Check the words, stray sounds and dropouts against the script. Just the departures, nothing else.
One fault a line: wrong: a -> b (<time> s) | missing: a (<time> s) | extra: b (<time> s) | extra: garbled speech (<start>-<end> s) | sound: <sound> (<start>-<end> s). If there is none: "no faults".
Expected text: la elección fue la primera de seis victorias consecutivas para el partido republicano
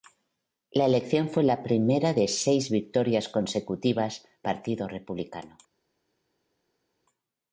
missing: para el (4.3 s)